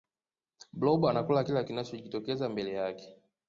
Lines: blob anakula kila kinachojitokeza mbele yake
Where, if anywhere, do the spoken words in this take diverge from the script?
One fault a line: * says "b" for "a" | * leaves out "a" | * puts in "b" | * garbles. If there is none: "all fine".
all fine